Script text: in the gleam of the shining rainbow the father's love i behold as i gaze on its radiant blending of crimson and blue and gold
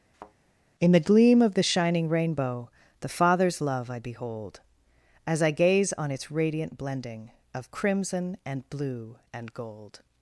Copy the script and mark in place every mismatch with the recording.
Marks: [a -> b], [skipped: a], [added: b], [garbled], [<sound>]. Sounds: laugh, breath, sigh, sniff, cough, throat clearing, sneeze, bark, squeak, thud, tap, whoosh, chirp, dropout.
[thud] in the gleam of the shining rainbow the father's love i behold as i gaze on its radiant blending of crimson and blue and gold